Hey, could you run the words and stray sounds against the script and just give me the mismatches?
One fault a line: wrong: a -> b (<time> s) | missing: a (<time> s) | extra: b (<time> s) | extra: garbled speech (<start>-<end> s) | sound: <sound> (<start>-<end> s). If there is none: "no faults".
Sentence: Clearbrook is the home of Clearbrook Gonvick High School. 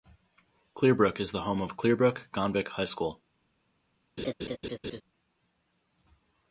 sound: laugh (4.2-5.0 s)